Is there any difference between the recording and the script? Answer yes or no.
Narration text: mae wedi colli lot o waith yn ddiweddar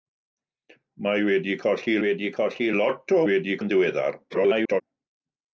yes